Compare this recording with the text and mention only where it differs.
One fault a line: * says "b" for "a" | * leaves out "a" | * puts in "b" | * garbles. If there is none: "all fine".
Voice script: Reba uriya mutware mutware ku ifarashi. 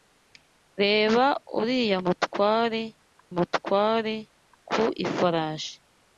all fine